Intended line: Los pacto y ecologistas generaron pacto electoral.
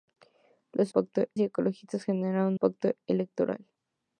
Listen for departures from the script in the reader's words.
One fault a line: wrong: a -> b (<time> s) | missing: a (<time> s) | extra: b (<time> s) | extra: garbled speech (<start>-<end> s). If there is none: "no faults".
no faults